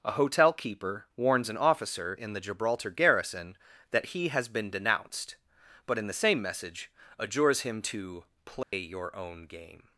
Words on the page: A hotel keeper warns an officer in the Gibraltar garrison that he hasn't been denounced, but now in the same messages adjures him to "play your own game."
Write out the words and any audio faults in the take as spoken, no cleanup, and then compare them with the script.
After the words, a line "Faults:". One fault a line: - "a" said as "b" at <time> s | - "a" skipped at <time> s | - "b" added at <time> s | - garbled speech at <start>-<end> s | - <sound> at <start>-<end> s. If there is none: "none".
A hotel keeper warns an officer in the Gibraltar garrison that he has been denounced, but in the same message adjures him to "play your own game."
Faults:
- "hasn't" said as "has" at 4.3 s
- "now" skipped at 6.0 s
- "messages" said as "message" at 6.4 s
- dropout at 8.6-8.7 s